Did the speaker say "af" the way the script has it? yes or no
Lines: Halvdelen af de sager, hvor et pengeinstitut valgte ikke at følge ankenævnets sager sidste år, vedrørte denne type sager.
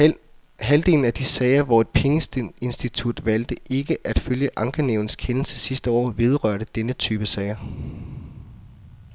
yes